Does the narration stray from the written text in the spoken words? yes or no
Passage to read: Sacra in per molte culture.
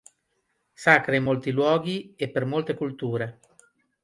yes